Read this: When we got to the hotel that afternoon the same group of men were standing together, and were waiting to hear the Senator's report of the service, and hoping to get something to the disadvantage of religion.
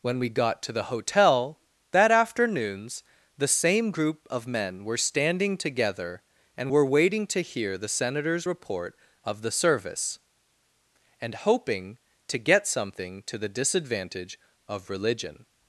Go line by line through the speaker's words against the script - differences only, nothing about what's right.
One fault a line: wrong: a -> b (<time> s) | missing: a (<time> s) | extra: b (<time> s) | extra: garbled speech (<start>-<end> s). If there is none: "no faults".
wrong: afternoon -> afternoons (2.1 s)